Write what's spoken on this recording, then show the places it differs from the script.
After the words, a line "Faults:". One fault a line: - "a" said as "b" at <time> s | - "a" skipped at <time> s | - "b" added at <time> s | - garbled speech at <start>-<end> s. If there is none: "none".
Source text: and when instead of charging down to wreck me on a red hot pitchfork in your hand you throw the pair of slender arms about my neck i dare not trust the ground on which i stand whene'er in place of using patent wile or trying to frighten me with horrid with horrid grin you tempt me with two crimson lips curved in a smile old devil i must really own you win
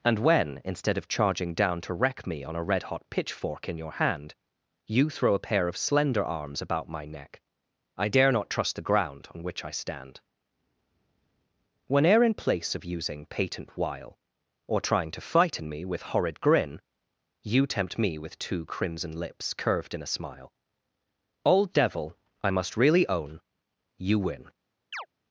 and when instead of charging down to wreck me on a red hot pitchfork in your hand you throw a pair of slender arms about my neck i dare not trust the ground on which i stand whene'er in place of using patent wile or trying to frighten me with horrid grin you tempt me with two crimson lips curved in a smile old devil i must really own you win
Faults:
- "the" said as "a" at 5.3 s
- "with horrid" skipped at 16.4 s